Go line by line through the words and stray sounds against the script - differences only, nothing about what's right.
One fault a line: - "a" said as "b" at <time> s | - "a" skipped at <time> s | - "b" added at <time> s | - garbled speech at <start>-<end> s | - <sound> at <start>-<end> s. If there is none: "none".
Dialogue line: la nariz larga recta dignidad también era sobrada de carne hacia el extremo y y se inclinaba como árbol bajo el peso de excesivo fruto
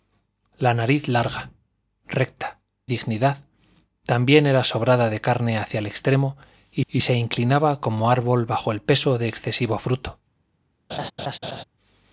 - laugh at 10.9-11.6 s